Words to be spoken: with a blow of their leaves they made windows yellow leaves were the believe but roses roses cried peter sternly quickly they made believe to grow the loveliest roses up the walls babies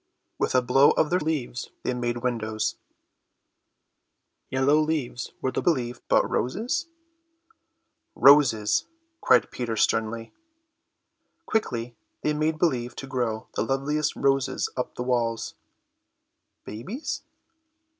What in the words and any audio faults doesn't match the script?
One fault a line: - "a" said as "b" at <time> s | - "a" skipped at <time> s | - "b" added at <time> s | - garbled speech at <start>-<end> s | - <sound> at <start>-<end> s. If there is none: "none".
none